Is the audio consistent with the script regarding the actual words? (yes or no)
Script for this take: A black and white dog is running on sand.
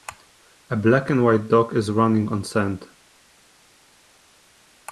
yes